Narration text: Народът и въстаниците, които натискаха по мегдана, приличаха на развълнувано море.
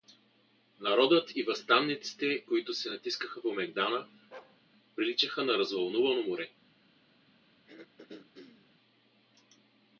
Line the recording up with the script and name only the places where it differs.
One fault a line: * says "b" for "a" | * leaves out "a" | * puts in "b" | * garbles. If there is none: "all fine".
* puts in "се"